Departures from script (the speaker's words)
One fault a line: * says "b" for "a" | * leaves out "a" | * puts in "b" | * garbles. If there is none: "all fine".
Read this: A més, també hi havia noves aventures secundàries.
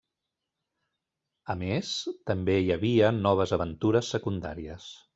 all fine